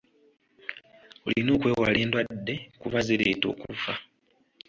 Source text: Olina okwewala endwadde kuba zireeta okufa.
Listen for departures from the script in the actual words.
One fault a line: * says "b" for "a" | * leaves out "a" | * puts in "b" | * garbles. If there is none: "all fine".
all fine